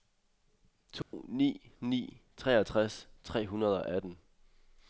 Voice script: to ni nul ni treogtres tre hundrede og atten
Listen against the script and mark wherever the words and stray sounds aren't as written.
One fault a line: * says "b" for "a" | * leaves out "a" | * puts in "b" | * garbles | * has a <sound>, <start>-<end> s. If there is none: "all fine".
* has a dropout, 1.0-1.1 s
* leaves out "nul"